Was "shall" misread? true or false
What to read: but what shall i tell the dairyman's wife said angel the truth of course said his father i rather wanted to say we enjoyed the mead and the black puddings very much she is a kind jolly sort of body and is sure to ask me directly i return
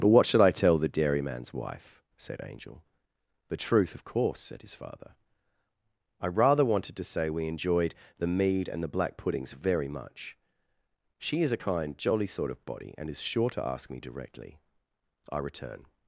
true